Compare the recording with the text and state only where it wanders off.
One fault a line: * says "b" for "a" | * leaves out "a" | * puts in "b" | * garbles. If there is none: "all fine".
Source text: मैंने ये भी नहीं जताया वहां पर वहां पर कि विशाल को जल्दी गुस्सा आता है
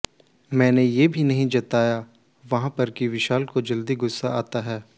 * leaves out "वहां पर"